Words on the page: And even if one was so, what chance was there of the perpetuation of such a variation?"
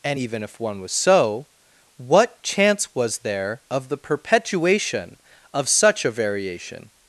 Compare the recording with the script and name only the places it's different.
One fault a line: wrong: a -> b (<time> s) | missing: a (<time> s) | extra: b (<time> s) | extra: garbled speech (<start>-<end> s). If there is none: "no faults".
no faults